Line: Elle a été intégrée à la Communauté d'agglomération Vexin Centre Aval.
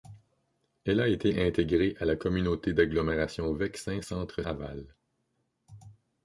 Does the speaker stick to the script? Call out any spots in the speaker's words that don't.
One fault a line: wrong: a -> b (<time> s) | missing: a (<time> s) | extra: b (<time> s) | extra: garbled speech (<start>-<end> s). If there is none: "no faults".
no faults